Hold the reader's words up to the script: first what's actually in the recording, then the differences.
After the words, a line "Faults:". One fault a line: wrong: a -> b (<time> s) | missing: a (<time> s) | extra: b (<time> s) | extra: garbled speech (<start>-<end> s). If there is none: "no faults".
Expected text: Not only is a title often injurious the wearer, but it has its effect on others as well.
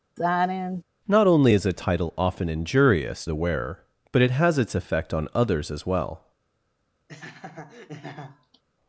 Not only is a title often injurious the wearer, but it has its effect on others as well.
Faults:
no faults